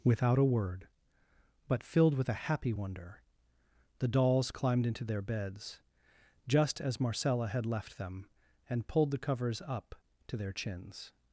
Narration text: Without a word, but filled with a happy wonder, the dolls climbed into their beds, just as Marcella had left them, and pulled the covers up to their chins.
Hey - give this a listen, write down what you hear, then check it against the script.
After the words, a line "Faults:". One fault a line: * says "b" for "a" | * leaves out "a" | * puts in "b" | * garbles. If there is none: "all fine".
Without a word, but filled with a happy wonder, the dolls climbed into their beds, just as Marcella had left them, and pulled the covers up to their chins.
Faults:
all fine